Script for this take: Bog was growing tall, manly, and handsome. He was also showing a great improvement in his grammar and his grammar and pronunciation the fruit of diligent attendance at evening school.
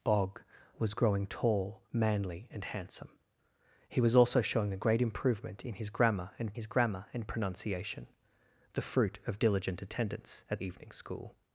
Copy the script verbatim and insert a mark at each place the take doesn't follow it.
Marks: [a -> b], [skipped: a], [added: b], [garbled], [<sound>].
Bog was growing tall, manly, and handsome. He was also showing a great improvement in his grammar and his grammar and pronunciation the fruit of diligent attendance at evening school.